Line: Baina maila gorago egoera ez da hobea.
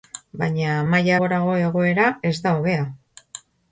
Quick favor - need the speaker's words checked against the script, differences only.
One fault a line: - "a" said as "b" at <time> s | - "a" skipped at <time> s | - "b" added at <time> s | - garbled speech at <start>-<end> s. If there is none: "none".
none